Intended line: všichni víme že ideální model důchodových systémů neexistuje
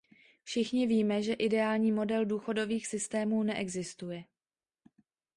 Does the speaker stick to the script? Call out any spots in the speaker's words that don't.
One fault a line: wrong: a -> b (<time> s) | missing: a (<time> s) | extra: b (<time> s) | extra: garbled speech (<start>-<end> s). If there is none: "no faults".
no faults